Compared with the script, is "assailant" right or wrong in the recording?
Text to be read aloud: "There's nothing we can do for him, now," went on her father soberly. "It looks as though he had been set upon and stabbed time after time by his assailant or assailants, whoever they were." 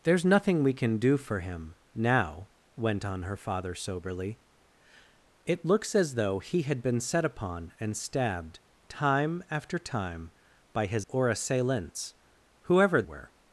wrong